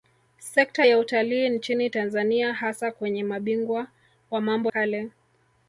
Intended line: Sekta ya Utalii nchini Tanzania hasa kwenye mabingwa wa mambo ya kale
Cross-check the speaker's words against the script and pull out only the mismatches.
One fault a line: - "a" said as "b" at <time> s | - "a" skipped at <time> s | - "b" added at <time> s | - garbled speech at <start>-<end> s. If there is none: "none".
- "ya" skipped at 4.7 s